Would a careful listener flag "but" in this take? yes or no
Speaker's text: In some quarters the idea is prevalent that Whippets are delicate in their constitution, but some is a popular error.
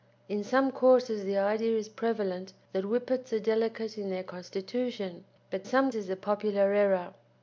no